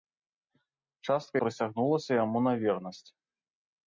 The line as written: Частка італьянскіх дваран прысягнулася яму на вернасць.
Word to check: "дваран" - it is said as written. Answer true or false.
false